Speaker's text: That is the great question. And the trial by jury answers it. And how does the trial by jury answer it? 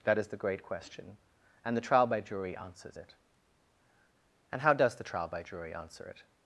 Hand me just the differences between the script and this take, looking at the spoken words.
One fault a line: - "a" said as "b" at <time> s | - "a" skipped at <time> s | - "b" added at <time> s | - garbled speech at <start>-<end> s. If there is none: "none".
none